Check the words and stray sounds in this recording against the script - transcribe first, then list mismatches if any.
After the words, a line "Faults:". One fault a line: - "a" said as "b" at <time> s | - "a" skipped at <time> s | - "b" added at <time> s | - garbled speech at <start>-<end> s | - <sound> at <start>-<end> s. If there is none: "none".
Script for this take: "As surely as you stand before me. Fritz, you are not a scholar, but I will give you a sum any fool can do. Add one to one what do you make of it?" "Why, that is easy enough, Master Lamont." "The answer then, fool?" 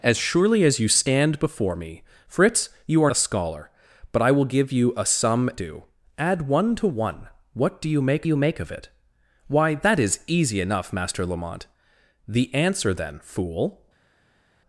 "As surely as you stand before me. Fritz, you are a scholar, but I will give you a sum do. Add one to one what do you make you make of it?" "Why, that is easy enough, Master Lamont." "The answer then, fool?"
Faults:
- "not" skipped at 3.1 s
- "any fool can" skipped at 5.5 s
- "you make" added at 8.2 s